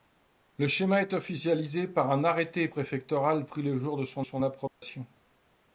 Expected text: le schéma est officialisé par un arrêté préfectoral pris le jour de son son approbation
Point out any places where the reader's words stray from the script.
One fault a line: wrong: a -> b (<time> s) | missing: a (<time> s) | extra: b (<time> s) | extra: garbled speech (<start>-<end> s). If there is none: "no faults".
no faults